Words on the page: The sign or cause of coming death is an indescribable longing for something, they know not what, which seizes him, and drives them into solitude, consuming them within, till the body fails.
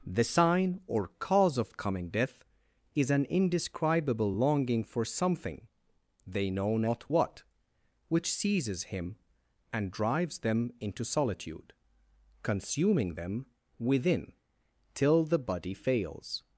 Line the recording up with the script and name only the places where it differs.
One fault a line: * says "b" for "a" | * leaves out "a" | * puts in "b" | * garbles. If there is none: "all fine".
all fine